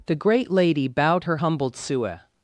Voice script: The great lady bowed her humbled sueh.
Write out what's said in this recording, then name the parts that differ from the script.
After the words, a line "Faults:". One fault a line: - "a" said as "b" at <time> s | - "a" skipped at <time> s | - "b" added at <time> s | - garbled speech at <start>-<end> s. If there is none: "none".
The great lady bowed her humbled sueh.
Faults:
none